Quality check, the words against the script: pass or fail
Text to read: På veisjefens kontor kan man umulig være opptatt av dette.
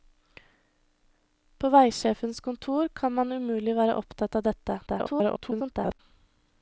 fail